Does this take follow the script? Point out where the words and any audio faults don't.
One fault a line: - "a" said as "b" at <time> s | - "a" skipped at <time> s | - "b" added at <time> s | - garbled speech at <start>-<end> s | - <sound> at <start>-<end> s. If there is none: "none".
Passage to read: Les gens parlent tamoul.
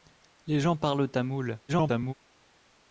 - garbled speech at 1.7-2.1 s